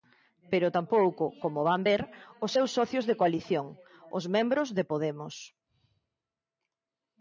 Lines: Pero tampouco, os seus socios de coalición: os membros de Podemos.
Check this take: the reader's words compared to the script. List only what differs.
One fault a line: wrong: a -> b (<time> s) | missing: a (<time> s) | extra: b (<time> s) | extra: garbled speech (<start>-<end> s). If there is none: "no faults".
extra: como van ver (1.4 s)